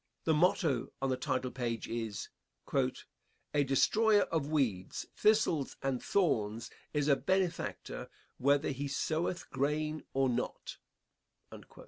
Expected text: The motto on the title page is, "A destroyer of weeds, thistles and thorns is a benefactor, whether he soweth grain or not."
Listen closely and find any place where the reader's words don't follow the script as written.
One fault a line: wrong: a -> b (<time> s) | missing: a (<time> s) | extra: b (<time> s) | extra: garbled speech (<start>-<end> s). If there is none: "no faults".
no faults